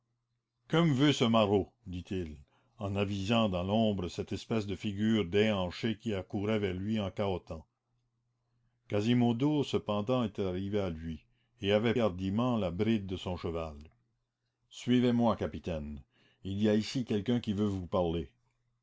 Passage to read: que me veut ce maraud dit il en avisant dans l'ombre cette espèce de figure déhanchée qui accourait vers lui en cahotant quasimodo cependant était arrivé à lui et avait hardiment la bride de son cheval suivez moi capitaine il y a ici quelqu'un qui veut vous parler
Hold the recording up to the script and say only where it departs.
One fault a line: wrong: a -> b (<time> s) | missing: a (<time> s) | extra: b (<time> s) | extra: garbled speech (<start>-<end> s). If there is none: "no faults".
no faults